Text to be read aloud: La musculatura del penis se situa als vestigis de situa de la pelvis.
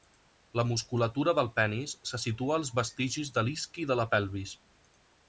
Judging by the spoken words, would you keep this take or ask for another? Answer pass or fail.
fail